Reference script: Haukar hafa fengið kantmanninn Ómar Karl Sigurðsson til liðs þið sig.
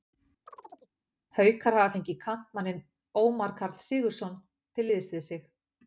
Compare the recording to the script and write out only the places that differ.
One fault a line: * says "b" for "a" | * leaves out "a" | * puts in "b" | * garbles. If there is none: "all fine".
* says "við" for "þið"